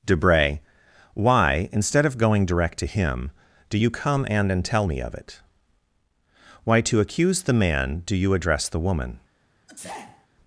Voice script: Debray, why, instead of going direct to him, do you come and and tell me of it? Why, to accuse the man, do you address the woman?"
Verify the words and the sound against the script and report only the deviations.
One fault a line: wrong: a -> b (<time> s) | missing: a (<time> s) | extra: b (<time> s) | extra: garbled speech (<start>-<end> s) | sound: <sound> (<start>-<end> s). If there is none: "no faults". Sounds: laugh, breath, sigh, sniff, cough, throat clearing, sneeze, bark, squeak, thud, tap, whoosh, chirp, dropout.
sound: sneeze (9.7-10.3 s)